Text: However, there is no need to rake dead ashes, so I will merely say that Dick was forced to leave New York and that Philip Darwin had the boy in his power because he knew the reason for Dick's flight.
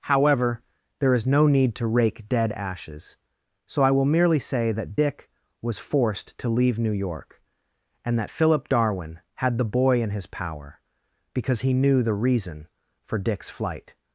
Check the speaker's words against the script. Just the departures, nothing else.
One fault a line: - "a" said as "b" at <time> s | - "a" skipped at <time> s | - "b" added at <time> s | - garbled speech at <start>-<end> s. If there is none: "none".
none